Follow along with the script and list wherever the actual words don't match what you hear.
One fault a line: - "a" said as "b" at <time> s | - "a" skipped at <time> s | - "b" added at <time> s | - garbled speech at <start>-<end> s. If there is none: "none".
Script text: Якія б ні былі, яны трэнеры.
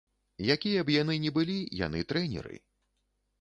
- "яны" added at 1.0 s